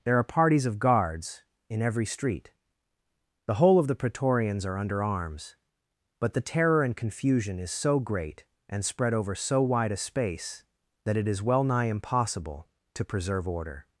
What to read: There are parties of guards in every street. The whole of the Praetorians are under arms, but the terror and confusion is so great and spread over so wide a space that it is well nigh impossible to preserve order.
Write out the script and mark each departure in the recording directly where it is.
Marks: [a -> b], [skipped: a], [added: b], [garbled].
There are parties of guards in every street. The whole of the Praetorians are under arms, but the terror and confusion is so great and spread over so wide a space that it is well nigh impossible to preserve order.